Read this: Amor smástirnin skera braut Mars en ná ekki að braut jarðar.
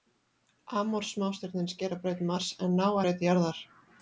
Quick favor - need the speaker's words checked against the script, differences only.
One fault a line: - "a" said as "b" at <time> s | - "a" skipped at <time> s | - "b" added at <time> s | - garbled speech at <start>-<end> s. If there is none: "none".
- "ekki að" skipped at 2.9 s